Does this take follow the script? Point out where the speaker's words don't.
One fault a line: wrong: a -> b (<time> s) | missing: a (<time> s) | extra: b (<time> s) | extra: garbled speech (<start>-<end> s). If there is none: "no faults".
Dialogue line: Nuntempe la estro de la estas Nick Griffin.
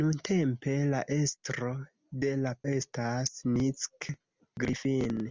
no faults